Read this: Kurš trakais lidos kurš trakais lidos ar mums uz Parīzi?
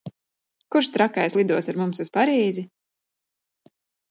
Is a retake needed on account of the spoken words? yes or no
yes